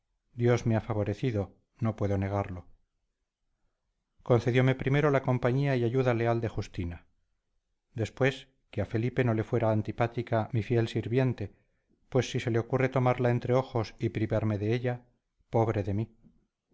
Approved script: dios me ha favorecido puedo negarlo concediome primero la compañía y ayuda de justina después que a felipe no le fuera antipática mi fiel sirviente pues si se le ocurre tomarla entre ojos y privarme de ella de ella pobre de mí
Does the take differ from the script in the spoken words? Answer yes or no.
yes